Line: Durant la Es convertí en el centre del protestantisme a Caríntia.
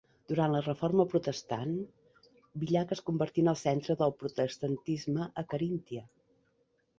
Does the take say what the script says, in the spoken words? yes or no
no